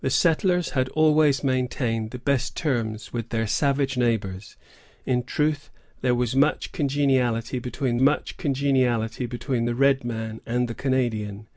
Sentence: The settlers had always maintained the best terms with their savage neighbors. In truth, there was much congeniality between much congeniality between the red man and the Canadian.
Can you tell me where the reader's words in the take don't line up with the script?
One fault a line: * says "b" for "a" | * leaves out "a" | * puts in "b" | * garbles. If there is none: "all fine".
all fine